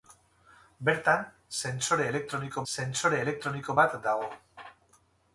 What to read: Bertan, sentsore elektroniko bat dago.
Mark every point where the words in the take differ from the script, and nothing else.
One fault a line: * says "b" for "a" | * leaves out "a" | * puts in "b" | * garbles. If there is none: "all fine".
* puts in "sentsore elektroniko"